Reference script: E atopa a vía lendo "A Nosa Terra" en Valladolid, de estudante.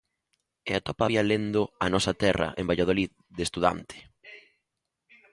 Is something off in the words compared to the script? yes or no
no